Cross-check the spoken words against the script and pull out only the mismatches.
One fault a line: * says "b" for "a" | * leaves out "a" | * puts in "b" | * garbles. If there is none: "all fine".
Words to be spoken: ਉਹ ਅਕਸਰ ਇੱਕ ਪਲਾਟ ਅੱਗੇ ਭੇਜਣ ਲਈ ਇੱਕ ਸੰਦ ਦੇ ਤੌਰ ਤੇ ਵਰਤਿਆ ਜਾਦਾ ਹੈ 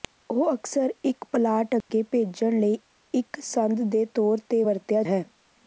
* leaves out "ਜਾਦਾ"